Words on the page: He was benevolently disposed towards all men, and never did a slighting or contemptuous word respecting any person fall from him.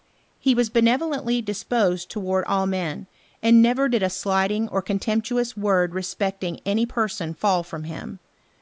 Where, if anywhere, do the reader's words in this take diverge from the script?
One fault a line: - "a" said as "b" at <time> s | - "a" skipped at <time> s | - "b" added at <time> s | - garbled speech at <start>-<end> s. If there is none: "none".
none